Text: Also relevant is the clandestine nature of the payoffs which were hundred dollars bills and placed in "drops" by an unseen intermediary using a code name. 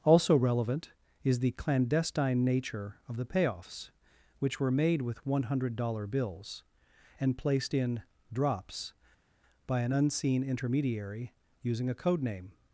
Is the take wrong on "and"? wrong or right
right